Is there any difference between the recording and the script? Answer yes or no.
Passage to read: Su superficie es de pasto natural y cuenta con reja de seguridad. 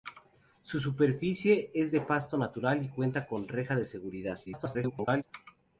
yes